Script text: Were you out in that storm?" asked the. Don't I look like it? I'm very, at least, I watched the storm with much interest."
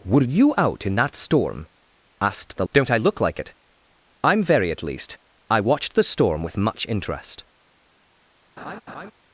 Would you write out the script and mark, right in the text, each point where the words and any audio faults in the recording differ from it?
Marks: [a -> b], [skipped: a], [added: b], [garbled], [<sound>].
Were you out in that storm?" asked the. Don't I look like it? I'm very, at least, I watched the storm with much interest." [laugh]